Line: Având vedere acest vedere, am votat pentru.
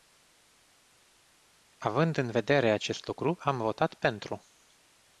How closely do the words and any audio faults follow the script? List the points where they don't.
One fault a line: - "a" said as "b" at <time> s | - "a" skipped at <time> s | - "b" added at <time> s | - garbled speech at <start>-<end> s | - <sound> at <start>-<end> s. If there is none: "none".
- "în" added at 2.2 s
- "vedere" said as "lucru" at 3.1 s